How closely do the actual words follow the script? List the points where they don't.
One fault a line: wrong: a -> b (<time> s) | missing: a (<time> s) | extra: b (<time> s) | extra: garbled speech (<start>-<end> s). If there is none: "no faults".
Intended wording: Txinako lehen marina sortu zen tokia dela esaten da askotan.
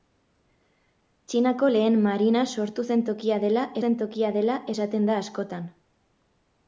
extra: zen tokia dela (3.8 s)